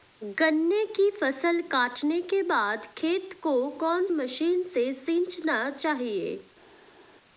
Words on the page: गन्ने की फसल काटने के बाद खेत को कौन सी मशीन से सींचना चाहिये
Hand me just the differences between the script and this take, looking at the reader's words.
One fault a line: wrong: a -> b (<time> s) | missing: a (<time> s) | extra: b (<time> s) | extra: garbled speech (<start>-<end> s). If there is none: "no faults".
missing: सी (4.1 s)